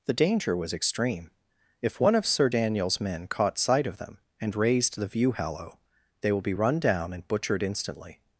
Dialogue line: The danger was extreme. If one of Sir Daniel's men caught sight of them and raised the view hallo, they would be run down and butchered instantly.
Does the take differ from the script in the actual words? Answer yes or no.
yes